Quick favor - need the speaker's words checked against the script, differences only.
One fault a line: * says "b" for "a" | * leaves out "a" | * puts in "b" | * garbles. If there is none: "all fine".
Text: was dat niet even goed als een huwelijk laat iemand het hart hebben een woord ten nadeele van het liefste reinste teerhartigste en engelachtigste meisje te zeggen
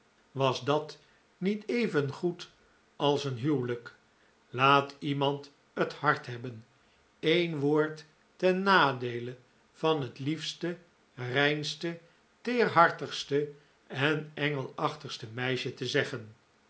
all fine